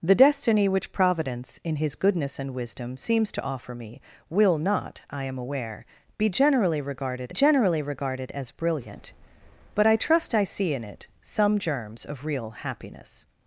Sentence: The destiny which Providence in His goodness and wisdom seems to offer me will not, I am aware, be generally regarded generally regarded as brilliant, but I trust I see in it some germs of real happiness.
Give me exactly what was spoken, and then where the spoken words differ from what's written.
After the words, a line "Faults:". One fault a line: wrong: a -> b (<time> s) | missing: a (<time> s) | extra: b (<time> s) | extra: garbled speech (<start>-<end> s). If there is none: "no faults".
The destiny which Providence in His goodness and wisdom seems to offer me will not, I am aware, be generally regarded generally regarded as brilliant, but I trust I see in it some germs of real happiness.
Faults:
no faults